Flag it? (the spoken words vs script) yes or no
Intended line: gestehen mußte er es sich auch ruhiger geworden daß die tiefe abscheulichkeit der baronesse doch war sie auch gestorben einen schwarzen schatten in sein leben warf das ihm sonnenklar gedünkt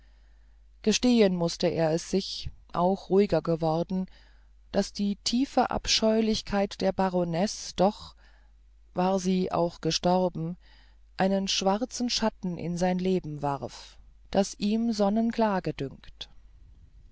no